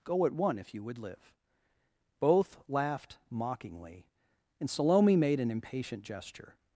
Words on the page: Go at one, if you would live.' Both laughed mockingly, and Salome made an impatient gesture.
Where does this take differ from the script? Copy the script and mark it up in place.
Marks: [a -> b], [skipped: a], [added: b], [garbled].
Go at one, if you would live.' Both laughed mockingly, and Salome made an impatient gesture.